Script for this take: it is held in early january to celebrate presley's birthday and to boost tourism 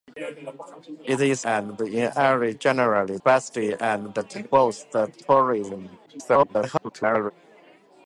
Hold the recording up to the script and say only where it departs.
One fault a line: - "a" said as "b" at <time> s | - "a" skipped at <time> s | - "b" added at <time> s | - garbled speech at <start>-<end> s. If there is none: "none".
- "held" said as "and" at 1.4 s
- "to celebrate presley's" skipped at 3.2 s
- garbled speech at 6.1-7.3 s